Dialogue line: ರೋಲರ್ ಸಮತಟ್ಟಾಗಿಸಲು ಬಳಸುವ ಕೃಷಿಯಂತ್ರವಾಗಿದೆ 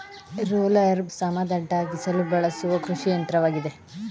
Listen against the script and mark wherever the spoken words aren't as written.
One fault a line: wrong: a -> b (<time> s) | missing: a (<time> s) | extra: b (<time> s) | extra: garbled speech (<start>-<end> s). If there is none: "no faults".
no faults